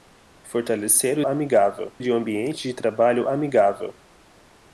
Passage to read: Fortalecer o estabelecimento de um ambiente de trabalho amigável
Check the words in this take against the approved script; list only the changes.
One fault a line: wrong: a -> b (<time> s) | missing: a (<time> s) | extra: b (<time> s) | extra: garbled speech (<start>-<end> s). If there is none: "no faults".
wrong: estabelecimento -> amigável (1.2 s)